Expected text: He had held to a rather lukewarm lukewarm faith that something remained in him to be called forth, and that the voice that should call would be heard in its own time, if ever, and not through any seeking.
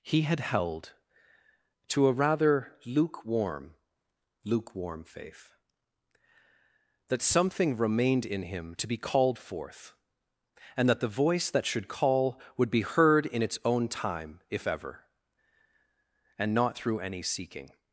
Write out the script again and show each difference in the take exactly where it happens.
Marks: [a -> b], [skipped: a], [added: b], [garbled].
He had held to a rather lukewarm lukewarm faith that something remained in him to be called forth, and that the voice that should call would be heard in its own time, if ever, and not through any seeking.